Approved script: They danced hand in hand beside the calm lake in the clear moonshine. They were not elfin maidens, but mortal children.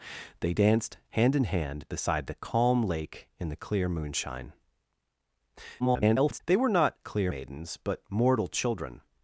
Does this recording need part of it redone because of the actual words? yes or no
yes